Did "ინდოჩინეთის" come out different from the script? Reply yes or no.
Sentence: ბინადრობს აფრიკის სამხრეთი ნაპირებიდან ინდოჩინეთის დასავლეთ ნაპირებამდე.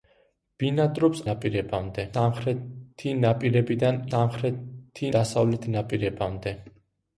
yes